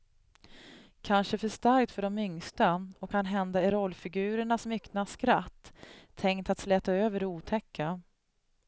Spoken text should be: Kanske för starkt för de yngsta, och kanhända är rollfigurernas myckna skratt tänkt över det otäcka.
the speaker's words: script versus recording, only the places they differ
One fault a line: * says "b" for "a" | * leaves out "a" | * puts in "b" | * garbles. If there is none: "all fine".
* puts in "att släta"